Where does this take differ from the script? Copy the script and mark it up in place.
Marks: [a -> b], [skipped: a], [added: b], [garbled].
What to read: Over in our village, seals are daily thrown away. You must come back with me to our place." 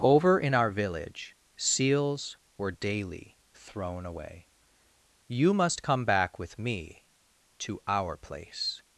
Over in our village, seals [are -> were] daily thrown away. You must come back with me to our place."